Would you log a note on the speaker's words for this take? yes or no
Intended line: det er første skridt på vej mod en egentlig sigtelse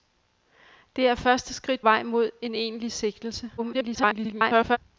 yes